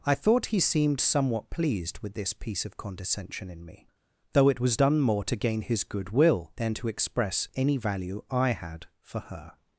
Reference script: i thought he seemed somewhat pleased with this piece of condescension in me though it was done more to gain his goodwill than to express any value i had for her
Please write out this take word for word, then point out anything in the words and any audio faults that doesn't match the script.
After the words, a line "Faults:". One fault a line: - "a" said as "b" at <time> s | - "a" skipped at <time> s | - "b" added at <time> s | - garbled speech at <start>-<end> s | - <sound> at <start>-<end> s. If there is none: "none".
i thought he seemed somewhat pleased with this piece of condescension in me though it was done more to gain his goodwill than to express any value i had for her
Faults:
none